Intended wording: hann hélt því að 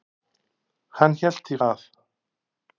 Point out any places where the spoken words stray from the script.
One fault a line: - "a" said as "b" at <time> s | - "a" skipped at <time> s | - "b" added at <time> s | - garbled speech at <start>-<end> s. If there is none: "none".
none